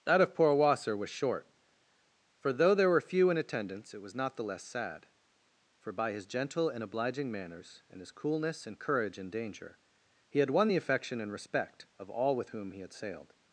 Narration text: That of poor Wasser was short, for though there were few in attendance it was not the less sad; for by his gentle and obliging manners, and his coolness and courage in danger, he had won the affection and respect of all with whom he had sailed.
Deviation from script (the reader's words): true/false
false